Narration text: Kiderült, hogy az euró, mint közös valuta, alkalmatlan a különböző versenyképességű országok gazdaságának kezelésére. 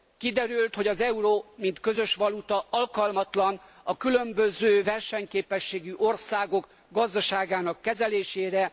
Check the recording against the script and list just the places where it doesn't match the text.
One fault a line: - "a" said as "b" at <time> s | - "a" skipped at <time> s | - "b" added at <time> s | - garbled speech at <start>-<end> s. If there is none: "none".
none